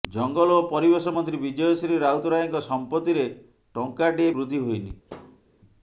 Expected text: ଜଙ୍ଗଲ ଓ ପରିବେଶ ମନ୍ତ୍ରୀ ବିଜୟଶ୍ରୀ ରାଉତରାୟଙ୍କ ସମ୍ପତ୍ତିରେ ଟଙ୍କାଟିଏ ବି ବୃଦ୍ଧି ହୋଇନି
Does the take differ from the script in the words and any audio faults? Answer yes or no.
yes